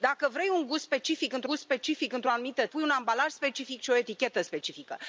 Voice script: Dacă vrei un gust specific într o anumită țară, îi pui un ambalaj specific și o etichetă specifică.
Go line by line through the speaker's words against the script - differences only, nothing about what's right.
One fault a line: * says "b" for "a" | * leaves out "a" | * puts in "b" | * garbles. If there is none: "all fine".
* puts in "gust specific într"
* leaves out "țară îi"